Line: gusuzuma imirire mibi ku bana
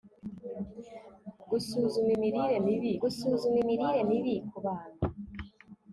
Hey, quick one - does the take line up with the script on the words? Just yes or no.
no